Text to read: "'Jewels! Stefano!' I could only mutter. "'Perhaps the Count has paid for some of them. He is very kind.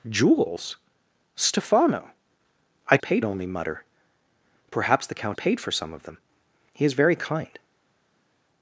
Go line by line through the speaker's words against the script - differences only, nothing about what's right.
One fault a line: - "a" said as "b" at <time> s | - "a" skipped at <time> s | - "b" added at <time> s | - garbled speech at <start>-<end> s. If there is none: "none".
- "could" said as "paid" at 3.0 s
- "has" skipped at 5.4 s